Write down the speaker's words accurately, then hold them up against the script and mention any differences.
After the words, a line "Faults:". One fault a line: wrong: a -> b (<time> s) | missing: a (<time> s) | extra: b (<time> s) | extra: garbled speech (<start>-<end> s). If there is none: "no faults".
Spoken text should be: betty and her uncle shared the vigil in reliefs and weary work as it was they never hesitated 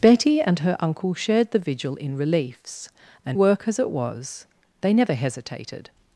betty and her uncle shared the vigil in reliefs and work as it was they never hesitated
Faults:
missing: weary (3.4 s)